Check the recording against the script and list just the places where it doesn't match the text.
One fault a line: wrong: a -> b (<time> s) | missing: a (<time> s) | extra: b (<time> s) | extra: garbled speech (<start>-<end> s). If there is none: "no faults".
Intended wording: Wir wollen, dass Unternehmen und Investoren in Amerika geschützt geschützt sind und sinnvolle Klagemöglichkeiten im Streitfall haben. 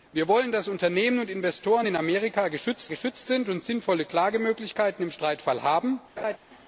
no faults